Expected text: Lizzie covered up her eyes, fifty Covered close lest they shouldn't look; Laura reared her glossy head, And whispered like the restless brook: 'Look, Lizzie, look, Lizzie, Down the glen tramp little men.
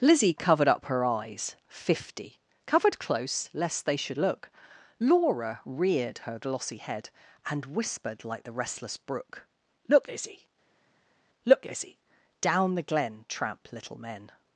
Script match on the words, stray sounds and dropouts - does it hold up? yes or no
no